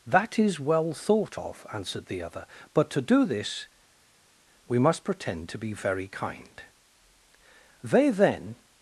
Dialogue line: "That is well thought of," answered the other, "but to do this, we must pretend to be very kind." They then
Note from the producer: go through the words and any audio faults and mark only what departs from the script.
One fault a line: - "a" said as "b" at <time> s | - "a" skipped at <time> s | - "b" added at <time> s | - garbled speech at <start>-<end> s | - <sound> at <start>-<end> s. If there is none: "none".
none